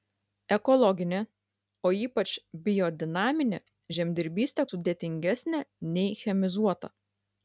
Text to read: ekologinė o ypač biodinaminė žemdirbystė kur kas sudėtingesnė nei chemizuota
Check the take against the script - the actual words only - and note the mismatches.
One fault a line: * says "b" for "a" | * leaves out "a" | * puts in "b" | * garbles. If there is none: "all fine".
* leaves out "kur kas"